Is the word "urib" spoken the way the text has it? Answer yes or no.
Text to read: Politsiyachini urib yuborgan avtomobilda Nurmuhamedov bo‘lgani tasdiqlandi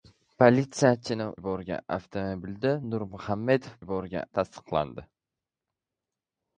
no